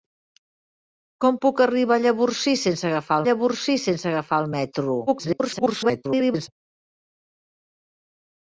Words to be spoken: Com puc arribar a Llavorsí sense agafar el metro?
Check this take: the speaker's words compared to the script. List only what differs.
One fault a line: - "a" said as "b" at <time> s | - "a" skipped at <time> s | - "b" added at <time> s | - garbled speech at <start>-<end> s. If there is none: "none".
- "Llavorsí sense agafar" added at 3.3 s
- garbled speech at 5.1-6.5 s